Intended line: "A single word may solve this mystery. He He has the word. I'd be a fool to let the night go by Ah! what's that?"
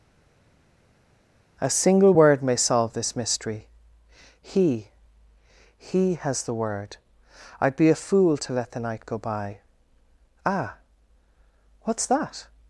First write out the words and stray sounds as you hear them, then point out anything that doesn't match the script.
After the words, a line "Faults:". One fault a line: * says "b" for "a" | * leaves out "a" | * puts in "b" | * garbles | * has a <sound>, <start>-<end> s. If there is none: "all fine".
"A single word may solve this mystery. He He has the word. I'd be a fool to let the night go by Ah! what's that?"
Faults:
all fine